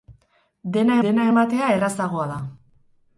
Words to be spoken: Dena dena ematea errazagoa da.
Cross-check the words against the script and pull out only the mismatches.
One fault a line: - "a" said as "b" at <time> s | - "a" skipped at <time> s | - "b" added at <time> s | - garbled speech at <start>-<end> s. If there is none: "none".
none